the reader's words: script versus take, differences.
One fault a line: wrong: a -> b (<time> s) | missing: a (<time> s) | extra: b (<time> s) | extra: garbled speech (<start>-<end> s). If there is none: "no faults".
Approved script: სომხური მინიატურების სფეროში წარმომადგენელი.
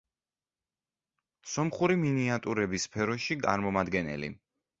no faults